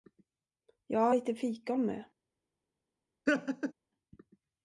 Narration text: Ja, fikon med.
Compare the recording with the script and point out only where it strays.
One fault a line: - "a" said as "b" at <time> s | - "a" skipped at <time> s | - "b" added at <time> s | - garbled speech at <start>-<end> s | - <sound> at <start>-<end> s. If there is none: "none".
- "lite" added at 1.1 s
- laugh at 3.3-3.7 s